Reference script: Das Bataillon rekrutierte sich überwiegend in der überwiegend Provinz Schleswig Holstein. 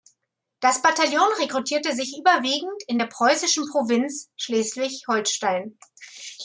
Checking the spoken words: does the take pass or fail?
fail